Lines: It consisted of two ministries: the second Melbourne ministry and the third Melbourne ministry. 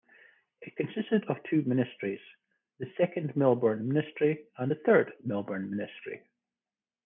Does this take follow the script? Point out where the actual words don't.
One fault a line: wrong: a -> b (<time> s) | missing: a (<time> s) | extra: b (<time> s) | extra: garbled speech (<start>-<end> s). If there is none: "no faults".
no faults